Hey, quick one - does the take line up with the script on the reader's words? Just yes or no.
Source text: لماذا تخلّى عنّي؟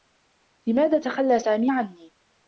no